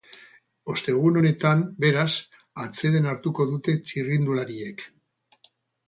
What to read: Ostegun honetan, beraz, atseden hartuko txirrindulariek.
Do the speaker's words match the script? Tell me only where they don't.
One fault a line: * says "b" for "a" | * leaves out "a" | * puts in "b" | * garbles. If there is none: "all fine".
* puts in "dute"